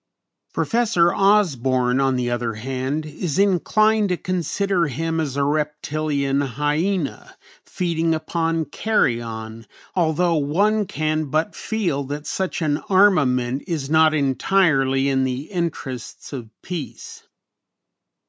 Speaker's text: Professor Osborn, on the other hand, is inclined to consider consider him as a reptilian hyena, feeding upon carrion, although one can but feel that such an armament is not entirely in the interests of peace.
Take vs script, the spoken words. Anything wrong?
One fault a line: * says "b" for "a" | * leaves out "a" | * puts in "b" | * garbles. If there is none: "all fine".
* leaves out "consider"